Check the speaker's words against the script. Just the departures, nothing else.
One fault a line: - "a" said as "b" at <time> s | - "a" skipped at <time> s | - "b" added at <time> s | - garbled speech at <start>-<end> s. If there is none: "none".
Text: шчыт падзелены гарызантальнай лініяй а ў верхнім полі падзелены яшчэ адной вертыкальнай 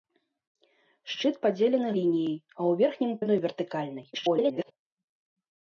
- "гарызантальнай" skipped at 1.9 s
- "полі падзелены яшчэ" skipped at 3.1 s
- garbled speech at 4.1-4.7 s